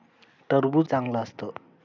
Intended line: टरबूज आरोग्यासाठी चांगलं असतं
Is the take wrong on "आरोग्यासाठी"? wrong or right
wrong